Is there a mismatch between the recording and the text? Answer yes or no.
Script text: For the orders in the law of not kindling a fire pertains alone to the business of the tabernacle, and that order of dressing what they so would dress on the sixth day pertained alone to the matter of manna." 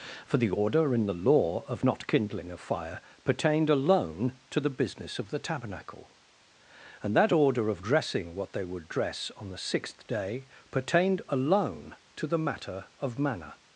yes